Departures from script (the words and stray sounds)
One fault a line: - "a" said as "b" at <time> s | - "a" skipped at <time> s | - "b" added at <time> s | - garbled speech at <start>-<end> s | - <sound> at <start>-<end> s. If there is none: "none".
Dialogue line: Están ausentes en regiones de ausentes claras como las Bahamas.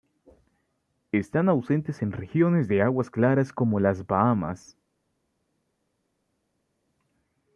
- "ausentes" said as "aguas" at 2.8 s